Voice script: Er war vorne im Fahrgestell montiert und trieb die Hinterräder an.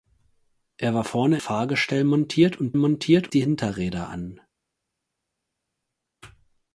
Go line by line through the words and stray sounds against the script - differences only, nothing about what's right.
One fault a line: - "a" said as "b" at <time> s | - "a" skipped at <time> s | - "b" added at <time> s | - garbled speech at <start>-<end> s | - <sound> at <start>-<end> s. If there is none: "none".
- "im" skipped at 1.4 s
- "trieb" said as "montiert" at 2.8 s